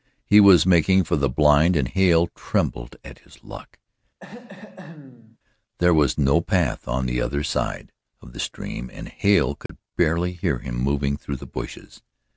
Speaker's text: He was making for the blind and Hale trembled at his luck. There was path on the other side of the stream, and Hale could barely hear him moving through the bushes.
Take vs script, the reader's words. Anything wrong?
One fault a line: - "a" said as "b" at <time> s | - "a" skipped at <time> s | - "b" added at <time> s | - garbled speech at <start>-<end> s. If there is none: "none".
- "no" added at 6.2 s